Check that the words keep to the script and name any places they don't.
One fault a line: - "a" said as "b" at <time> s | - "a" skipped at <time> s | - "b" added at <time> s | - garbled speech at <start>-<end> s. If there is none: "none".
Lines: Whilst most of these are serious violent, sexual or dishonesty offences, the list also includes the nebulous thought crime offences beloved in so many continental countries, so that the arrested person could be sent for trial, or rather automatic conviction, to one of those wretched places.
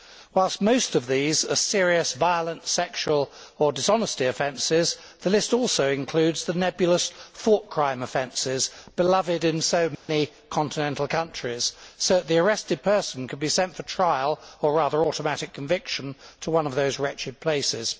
none